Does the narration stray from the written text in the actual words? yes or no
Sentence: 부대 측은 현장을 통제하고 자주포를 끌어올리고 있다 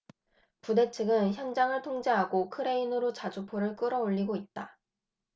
yes